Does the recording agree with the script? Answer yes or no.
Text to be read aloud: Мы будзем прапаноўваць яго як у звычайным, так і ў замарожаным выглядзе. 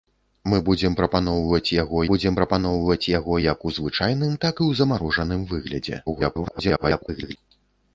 no